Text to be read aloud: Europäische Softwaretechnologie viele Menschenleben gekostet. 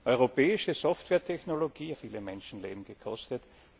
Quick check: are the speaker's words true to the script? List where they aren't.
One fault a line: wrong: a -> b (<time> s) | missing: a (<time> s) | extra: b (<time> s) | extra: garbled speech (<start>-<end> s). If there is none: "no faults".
no faults